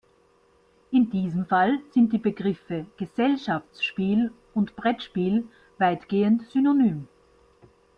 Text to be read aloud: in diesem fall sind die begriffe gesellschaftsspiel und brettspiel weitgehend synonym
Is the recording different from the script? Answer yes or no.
no